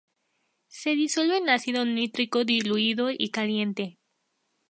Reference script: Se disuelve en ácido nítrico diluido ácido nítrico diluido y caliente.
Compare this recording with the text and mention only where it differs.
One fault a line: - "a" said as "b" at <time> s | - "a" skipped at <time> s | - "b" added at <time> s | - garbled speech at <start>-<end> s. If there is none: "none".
- "ácido nítrico diluido" skipped at 3.1 s